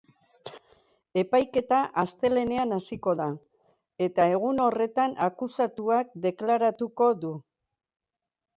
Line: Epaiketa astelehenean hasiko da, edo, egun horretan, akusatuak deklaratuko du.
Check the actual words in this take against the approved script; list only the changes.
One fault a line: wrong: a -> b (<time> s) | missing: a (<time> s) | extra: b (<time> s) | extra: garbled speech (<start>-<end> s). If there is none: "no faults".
wrong: edo -> eta (4.1 s)